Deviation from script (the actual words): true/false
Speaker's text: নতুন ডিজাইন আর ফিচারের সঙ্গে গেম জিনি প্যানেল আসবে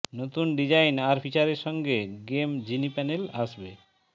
false